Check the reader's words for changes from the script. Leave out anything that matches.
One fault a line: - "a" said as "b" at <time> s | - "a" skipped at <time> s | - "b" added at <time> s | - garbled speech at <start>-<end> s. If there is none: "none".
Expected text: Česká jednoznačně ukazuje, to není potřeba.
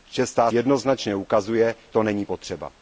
none